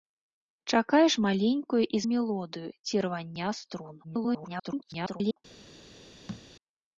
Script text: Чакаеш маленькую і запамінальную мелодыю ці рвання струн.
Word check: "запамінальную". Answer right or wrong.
wrong